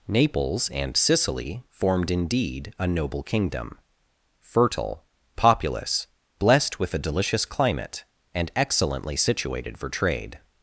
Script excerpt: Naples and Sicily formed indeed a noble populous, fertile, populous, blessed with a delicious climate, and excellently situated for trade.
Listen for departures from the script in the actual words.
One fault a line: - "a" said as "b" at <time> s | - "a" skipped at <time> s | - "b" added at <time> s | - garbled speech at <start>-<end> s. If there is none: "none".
- "populous" said as "kingdom" at 3.2 s